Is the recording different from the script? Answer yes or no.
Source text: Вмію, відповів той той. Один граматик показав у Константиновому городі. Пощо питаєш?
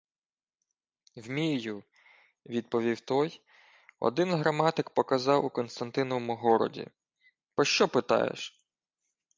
yes